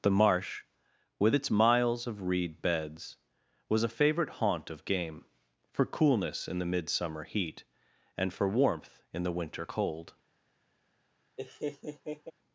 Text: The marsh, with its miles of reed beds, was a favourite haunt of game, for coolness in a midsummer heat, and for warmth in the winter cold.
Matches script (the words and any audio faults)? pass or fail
fail